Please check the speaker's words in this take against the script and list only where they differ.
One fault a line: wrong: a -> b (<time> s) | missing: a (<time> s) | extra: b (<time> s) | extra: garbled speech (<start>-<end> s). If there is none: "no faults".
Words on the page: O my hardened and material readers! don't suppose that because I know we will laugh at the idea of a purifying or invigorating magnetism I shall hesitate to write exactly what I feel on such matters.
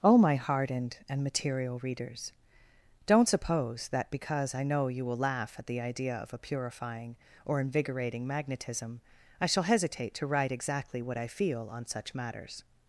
wrong: we -> you (4.9 s)